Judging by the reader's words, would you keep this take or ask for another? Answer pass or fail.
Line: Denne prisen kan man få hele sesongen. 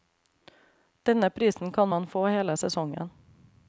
pass